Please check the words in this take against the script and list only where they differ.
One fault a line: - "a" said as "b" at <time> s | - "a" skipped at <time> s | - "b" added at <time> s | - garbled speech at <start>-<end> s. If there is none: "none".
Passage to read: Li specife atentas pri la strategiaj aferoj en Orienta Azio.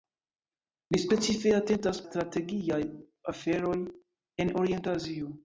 - "pri la" skipped at 2.0 s